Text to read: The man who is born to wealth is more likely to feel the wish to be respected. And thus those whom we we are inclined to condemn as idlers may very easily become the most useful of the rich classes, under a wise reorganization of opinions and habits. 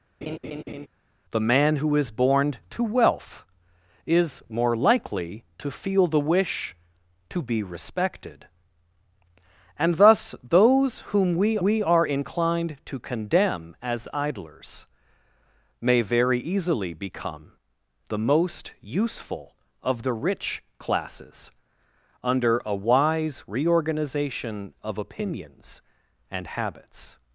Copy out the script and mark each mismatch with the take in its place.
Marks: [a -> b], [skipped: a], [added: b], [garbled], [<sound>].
[laugh] The man who is born to wealth is more likely to feel the wish to be respected. And thus those whom we we are inclined to condemn as idlers may very easily become the most useful of the rich classes, under a wise reorganization of opinions and habits.